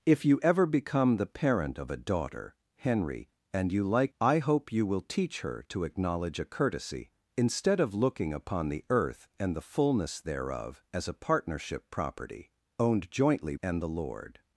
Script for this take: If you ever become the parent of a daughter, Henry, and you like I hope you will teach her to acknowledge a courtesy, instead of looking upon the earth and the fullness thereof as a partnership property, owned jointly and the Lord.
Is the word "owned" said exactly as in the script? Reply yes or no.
yes